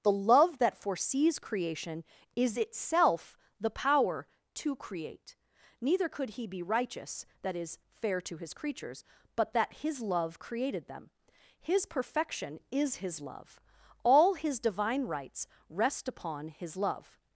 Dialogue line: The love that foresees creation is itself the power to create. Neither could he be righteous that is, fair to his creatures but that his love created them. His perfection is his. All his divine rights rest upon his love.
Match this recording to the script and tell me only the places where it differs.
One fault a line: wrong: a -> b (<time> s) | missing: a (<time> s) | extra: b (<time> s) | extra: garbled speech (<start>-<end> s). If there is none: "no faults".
extra: love (13.2 s)